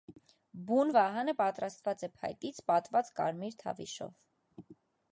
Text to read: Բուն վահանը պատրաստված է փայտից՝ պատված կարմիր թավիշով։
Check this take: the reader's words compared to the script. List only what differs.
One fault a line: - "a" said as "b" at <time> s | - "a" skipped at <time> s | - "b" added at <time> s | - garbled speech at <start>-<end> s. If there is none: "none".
none